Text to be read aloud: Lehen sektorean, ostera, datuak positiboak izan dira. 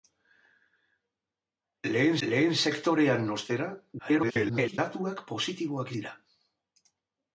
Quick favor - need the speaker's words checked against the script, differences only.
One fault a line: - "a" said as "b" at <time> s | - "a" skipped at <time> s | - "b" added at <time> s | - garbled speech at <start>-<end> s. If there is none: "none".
- "lehen" added at 2.3 s
- garbled speech at 4.0-4.8 s
- "izan" skipped at 6.0 s